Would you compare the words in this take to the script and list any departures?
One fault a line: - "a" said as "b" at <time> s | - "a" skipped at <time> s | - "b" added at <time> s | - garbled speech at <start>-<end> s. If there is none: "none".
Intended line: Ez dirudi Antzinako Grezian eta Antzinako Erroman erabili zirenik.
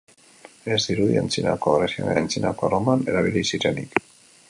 - "eta" skipped at 2.1 s